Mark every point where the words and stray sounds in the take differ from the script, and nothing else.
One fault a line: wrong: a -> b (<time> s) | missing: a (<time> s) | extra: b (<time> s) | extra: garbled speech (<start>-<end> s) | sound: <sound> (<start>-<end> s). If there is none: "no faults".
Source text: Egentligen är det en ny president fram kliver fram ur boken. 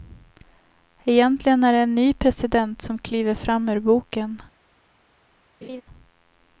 wrong: fram -> som (2.8 s)
sound: laugh (5.6-5.8 s)